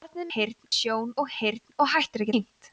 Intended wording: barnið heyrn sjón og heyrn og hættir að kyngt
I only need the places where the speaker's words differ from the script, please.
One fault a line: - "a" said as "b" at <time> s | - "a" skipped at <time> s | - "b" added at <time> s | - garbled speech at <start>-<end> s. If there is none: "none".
none